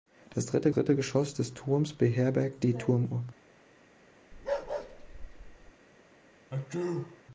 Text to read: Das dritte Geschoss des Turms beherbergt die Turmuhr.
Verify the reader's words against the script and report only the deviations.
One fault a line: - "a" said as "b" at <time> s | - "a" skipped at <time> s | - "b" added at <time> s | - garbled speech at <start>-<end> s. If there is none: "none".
- "dritte" added at 0.7 s